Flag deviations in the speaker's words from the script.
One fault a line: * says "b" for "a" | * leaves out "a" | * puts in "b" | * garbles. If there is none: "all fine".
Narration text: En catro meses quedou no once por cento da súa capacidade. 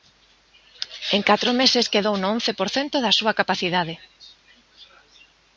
all fine